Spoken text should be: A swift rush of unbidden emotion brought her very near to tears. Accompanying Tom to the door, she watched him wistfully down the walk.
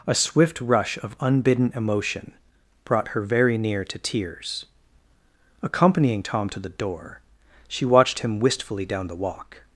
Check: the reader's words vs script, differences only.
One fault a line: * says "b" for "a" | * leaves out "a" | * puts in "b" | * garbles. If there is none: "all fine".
all fine